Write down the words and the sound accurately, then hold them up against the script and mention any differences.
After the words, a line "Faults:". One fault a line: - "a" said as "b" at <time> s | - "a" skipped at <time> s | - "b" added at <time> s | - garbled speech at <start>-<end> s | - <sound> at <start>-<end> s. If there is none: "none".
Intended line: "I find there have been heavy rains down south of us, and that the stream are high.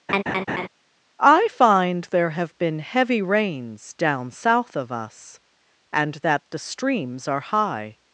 "I find there have been heavy rains down south of us, and that the streams are high.
Faults:
- laugh at 0.1-0.7 s
- "stream" said as "streams" at 6.6 s